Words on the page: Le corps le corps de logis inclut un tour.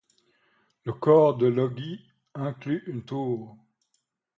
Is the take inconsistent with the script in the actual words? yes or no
yes